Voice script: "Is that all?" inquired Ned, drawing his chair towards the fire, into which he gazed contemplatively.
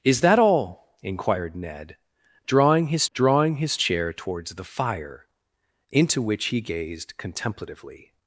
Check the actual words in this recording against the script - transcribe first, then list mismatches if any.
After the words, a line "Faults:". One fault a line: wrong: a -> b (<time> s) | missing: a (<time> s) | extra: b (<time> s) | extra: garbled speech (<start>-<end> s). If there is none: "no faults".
"Is that all?" inquired Ned, drawing his drawing his chair towards the fire, into which he gazed contemplatively.
Faults:
extra: drawing his (3.1 s)